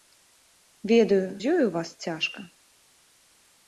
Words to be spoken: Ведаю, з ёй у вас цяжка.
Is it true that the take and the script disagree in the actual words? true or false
false